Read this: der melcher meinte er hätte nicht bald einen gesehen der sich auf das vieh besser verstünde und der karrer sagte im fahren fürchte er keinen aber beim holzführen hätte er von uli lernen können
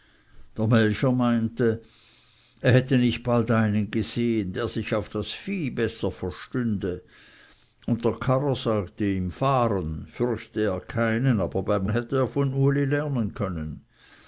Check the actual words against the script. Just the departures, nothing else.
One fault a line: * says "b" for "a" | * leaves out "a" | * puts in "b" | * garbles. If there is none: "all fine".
* leaves out "holzführen"